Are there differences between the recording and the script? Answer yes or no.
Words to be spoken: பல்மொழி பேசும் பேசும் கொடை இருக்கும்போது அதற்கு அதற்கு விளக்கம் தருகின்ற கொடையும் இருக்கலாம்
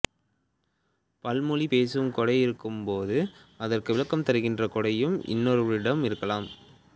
yes